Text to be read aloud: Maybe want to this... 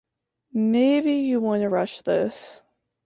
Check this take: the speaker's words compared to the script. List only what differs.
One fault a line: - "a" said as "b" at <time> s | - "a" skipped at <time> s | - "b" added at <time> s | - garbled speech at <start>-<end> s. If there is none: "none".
- "you" added at 1.1 s
- "rush" added at 1.7 s